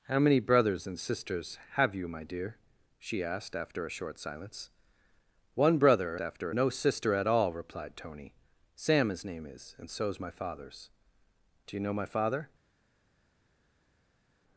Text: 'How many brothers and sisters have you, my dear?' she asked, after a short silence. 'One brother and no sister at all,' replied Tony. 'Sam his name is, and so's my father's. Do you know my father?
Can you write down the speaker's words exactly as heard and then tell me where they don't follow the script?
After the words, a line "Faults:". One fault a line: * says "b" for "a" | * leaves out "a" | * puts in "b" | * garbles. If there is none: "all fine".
'How many brothers and sisters have you, my dear?' she asked, after a short silence. 'One brother after no sister at all,' replied Tony. 'Sam his name is, and so's my father's. Do you know my father?
Faults:
* says "after" for "and"